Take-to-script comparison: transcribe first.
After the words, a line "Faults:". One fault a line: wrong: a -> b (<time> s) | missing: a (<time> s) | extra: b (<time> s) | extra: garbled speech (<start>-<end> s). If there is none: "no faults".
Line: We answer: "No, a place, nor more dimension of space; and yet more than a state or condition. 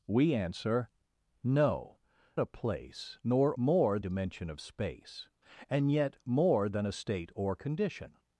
We answer: "No, a place, nor more dimension of space; and yet more than a state or condition.
Faults:
no faults